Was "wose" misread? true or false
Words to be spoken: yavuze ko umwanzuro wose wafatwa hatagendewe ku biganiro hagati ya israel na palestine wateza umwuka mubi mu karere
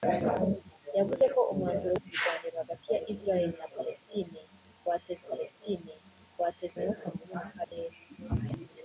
true